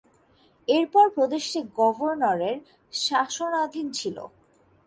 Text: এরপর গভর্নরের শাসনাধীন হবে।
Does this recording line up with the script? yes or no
no